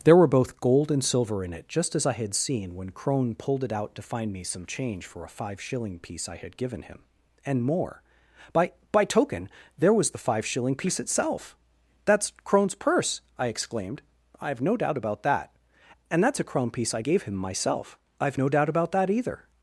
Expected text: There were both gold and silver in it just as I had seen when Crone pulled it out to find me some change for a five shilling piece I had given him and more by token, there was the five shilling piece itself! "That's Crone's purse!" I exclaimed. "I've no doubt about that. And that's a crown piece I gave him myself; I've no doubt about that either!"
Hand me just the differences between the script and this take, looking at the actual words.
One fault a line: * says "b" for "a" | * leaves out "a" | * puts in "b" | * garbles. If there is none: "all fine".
* puts in "by"